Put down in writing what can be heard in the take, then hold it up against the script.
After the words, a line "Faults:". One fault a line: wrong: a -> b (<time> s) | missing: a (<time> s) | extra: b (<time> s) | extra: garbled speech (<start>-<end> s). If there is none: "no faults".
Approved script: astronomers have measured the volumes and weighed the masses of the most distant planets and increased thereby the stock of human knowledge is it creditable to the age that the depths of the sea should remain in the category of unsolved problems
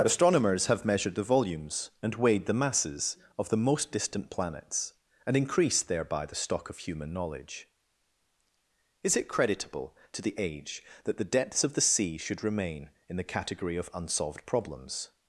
astronomers have measured the volumes and weighed the masses of the most distant planets and increased thereby the stock of human knowledge is it creditable to the age that the depths of the sea should remain in the category of unsolved problems
Faults:
no faults